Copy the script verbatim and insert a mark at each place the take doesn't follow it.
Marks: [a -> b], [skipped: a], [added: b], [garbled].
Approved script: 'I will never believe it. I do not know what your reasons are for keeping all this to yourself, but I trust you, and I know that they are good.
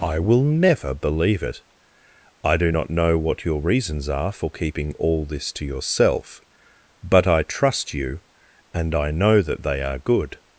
'I will never believe it. I do not know what your reasons are for keeping all this to yourself, but I trust you, and I know that they are good.